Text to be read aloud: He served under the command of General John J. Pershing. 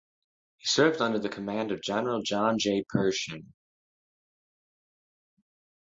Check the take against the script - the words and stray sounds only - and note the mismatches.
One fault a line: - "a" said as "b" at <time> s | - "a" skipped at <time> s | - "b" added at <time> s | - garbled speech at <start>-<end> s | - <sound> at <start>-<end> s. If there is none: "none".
none